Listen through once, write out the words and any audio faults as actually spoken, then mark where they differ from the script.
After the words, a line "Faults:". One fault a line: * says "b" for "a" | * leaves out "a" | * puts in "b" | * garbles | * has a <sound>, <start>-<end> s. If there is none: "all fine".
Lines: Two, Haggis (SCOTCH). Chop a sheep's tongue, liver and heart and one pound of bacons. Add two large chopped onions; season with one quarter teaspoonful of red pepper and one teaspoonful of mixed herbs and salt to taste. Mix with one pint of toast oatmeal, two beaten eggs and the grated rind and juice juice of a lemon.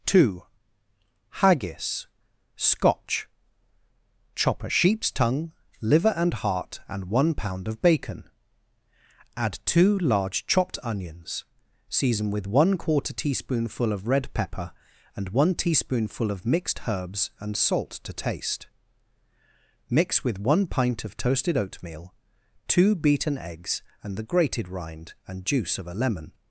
Two, Haggis (SCOTCH). Chop a sheep's tongue, liver and heart and one pound of bacon. Add two large chopped onions; season with one quarter teaspoonful of red pepper and one teaspoonful of mixed herbs and salt to taste. Mix with one pint of toasted oatmeal, two beaten eggs and the grated rind and juice of a lemon.
Faults:
* says "bacon" for "bacons"
* says "toasted" for "toast"
* leaves out "juice"